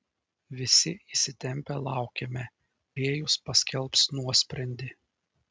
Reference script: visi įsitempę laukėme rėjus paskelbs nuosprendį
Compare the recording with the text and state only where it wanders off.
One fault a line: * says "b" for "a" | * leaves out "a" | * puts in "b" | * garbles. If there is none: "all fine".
all fine